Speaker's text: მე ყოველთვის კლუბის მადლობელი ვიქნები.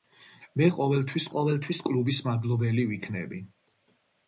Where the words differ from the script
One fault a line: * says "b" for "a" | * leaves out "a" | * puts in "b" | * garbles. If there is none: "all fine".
* puts in "ყოველთვის"